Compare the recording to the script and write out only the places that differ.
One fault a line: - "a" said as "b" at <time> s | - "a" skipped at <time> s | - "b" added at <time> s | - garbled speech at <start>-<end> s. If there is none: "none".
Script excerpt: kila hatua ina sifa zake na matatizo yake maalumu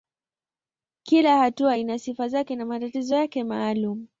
none